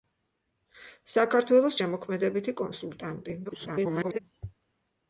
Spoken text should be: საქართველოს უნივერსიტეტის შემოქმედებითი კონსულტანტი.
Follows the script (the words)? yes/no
no